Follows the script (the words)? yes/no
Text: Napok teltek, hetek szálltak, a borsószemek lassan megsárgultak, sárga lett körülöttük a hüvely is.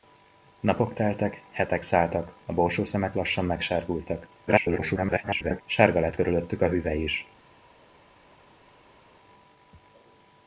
no